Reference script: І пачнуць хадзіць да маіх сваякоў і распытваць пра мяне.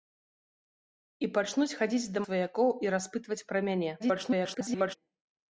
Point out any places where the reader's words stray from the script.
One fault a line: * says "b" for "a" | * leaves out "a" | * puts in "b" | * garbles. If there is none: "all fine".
* leaves out "маіх"
* garbles